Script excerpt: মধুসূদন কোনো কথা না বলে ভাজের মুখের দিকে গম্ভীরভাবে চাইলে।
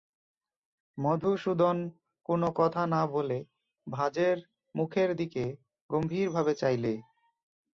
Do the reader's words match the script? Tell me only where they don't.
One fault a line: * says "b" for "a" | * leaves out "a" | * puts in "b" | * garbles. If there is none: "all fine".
all fine